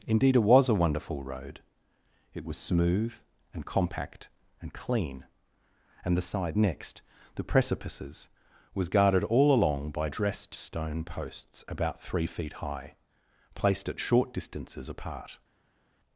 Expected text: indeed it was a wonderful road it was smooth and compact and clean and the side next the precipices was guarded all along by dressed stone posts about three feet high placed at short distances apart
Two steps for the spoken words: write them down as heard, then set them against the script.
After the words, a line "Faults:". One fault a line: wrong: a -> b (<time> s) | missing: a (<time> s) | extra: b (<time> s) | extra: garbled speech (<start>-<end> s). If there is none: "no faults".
indeed it was a wonderful road it was smooth and compact and clean and the side next the precipices was guarded all along by dressed stone posts about three feet high placed at short distances apart
Faults:
no faults